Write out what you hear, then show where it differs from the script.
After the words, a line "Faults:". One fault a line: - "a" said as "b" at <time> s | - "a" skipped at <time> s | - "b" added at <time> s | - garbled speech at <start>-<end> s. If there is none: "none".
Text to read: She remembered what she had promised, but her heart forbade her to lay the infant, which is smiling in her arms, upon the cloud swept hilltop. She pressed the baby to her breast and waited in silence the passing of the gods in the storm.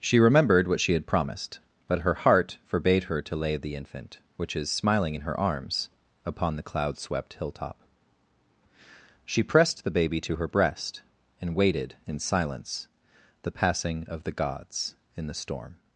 She remembered what she had promised, but her heart forbade her to lay the infant, which is smiling in her arms, upon the cloud swept hilltop. She pressed the baby to her breast and waited in silence the passing of the gods in the storm.
Faults:
none